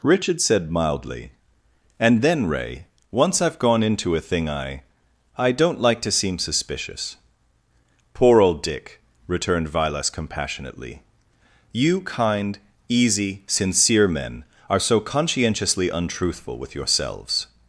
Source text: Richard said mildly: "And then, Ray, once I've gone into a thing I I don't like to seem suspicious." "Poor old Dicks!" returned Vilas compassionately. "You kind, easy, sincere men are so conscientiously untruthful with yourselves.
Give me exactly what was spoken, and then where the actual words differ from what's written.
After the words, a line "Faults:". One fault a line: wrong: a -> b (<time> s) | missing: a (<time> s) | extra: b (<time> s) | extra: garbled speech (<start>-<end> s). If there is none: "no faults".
Richard said mildly: "And then, Ray, once I've gone into a thing I I don't like to seem suspicious." "Poor old Dick!" returned Vilas compassionately. "You kind, easy, sincere men are so conscientiously untruthful with yourselves.
Faults:
wrong: Dicks -> Dick (8.6 s)